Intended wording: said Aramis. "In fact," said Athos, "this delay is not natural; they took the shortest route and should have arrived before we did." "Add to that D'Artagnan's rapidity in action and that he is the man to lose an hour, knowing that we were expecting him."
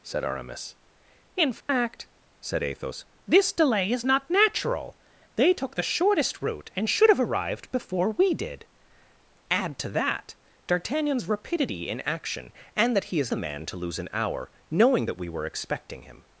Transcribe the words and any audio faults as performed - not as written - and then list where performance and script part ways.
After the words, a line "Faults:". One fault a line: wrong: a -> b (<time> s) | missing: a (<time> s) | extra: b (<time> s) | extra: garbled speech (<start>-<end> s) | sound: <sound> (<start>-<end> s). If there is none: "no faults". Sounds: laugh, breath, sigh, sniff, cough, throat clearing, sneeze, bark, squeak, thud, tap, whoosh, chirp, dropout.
said Aramis. "In fact," said Athos, "this delay is not natural; they took the shortest route and should have arrived before we did." "Add to that D'Artagnan's rapidity in action and that he is the man to lose an hour, knowing that we were expecting him."
Faults:
sound: dropout (1.6-1.7 s)